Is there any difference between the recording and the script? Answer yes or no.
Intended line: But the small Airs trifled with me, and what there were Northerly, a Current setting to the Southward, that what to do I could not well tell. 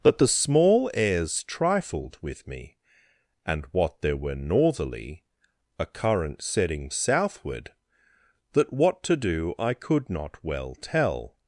yes